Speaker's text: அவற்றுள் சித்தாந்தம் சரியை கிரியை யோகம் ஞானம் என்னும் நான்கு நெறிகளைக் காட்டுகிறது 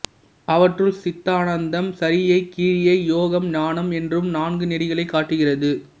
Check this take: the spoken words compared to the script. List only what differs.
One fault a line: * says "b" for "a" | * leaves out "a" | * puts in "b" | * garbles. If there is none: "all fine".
all fine